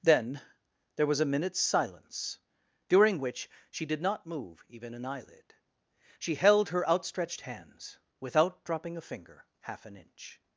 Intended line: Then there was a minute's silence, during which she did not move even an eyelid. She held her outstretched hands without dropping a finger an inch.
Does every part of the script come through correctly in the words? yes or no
no